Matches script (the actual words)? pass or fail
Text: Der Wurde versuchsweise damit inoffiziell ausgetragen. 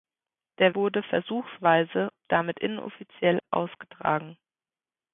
pass